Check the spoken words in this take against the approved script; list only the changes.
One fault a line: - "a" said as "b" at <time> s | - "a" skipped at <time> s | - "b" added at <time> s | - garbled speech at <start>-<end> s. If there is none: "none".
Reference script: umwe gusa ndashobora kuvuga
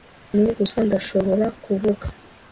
none